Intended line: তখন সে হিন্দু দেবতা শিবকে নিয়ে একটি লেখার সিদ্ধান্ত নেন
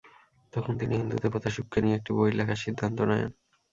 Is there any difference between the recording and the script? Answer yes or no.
yes